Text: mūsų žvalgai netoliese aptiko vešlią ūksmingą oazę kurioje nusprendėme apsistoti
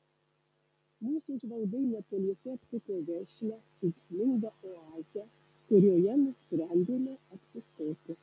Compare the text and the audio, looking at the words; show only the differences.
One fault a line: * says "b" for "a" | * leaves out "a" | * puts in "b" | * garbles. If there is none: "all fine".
all fine